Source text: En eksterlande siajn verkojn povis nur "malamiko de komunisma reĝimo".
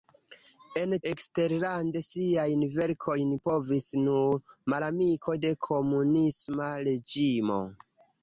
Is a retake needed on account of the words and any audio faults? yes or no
no